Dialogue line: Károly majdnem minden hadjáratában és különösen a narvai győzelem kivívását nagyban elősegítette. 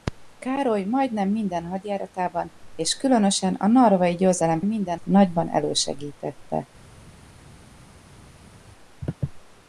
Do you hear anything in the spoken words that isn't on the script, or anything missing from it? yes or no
yes